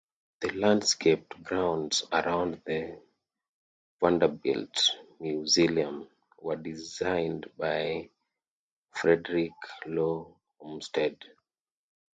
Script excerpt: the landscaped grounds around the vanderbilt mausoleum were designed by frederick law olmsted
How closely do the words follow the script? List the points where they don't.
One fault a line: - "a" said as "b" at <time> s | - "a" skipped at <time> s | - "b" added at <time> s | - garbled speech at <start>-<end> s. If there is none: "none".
none